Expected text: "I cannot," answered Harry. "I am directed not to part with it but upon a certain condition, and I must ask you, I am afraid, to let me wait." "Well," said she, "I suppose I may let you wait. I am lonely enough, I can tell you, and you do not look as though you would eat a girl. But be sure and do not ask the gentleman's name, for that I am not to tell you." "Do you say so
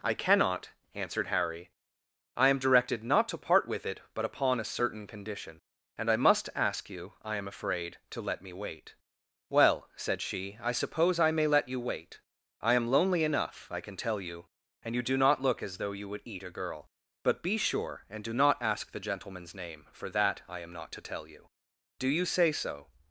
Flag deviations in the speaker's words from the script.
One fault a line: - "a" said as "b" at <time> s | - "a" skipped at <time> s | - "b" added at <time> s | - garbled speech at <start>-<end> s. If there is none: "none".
none